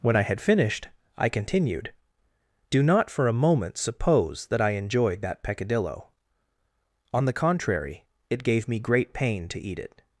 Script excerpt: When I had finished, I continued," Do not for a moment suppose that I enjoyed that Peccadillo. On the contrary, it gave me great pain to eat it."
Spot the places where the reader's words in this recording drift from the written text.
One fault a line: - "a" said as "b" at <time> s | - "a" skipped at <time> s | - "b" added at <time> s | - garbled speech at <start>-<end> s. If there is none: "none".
none